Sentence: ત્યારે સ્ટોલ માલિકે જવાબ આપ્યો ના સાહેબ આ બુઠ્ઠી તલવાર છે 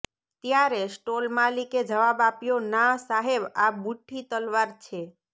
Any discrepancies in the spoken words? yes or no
no